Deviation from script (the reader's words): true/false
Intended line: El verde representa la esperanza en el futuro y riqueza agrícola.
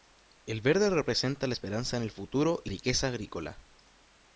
false